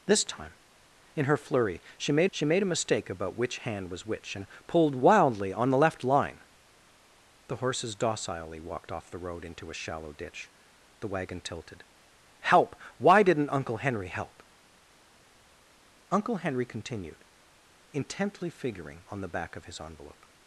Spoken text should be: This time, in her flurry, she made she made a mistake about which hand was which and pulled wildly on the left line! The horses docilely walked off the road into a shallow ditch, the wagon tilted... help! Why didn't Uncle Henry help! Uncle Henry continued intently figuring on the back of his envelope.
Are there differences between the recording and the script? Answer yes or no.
no